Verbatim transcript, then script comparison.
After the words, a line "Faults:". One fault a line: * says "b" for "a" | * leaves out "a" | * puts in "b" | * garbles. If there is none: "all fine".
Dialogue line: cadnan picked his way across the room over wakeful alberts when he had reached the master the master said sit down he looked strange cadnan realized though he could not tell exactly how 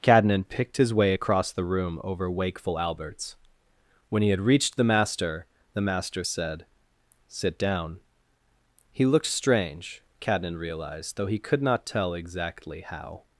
cadnan picked his way across the room over wakeful alberts when he had reached the master the master said sit down he looked strange cadnan realized though he could not tell exactly how
Faults:
all fine